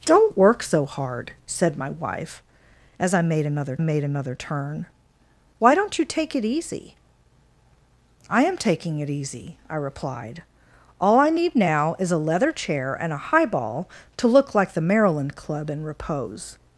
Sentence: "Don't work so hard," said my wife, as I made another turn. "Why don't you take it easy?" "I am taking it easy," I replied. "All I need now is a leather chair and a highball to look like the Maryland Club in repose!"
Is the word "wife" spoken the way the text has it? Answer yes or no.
yes